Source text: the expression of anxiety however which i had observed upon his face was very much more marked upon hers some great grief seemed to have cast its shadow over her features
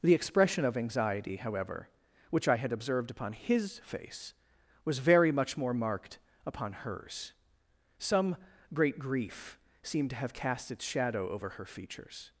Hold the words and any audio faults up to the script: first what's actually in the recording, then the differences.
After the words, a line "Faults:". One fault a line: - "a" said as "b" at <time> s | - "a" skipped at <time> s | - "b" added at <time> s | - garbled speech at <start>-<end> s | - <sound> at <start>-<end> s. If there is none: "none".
the expression of anxiety however which i had observed upon his face was very much more marked upon hers some great grief seemed to have cast its shadow over her features
Faults:
none